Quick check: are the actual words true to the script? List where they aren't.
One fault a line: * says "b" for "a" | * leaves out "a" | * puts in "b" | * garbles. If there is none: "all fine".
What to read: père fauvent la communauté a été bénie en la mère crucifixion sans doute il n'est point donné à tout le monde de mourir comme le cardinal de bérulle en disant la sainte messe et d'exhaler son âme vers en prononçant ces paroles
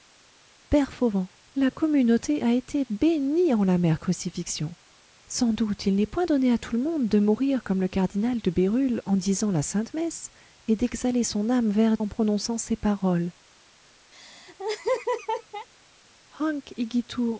all fine